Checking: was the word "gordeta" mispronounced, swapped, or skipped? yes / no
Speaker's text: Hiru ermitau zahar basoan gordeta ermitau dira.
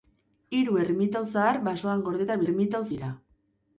no